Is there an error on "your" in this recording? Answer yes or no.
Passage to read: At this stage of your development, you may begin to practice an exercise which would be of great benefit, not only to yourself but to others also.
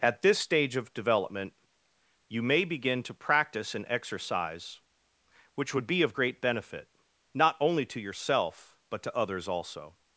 yes